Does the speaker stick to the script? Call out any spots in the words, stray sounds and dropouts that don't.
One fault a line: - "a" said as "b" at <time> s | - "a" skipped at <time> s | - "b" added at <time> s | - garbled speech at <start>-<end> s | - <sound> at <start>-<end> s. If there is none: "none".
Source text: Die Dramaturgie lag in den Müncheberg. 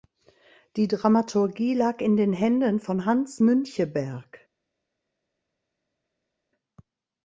- "Händen von Hans" added at 2.3 s